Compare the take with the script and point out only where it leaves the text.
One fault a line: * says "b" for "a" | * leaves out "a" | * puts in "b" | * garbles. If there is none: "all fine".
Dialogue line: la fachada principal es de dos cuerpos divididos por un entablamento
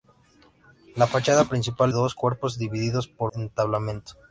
* leaves out "es de"
* leaves out "un"